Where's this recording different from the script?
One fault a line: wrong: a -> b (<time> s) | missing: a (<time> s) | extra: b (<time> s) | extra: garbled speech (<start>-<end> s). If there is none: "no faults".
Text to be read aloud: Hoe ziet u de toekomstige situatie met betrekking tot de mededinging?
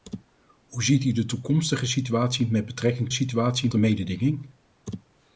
wrong: tot -> situatie (3.1 s)